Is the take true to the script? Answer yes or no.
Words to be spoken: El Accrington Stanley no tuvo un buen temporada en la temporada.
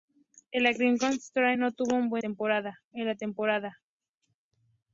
yes